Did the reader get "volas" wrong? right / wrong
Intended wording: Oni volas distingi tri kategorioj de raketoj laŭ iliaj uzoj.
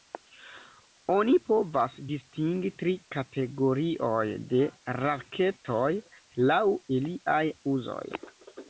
wrong